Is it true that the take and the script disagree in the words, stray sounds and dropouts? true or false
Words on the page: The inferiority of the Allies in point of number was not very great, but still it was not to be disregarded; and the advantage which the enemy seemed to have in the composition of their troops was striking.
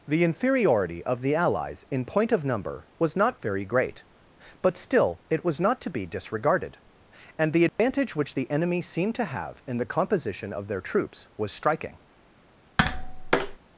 true